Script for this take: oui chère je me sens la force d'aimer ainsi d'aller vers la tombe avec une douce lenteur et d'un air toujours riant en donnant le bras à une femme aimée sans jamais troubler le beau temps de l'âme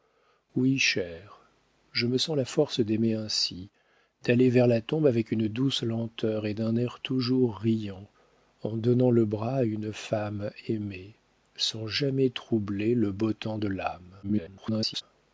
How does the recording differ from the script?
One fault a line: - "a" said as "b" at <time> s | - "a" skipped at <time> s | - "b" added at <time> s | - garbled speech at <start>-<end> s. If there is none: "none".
- garbled speech at 14.2-15.0 s